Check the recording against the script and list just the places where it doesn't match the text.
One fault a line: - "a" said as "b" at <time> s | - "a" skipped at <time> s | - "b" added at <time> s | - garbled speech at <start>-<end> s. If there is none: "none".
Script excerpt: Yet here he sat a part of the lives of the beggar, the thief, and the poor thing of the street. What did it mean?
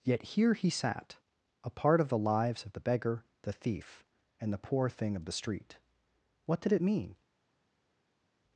none